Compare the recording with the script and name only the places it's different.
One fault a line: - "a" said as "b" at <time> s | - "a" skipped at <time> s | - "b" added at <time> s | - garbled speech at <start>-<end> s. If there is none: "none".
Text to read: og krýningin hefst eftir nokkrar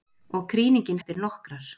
- "hefst" skipped at 1.0 s